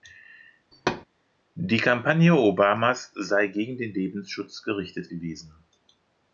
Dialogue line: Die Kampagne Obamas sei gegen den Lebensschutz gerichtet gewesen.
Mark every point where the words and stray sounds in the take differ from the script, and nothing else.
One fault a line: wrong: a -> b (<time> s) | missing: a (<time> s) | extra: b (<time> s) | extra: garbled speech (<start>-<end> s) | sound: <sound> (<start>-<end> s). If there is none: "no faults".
sound: thud (0.7-1.1 s)